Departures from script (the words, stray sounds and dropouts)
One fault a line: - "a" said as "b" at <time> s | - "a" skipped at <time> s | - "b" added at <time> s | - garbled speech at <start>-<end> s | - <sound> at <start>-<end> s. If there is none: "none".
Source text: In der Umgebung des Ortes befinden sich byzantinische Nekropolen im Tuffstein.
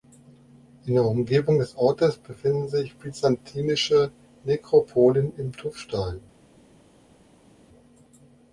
none